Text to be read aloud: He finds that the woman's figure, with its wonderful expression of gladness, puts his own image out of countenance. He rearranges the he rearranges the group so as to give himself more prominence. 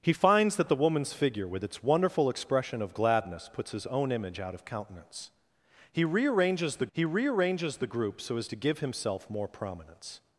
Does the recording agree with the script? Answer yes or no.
yes